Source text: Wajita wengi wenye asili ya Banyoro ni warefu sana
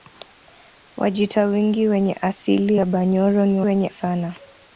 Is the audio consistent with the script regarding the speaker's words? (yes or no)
no